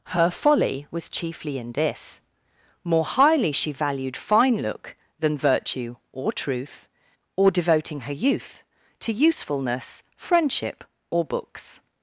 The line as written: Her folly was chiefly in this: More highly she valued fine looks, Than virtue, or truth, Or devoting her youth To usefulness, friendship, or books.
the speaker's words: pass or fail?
fail